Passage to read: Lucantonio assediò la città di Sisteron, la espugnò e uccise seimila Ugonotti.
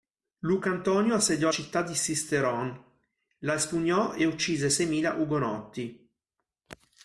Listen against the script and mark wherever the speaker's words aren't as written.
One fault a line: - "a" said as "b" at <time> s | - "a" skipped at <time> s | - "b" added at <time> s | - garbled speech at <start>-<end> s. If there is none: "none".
- "la" skipped at 1.5 s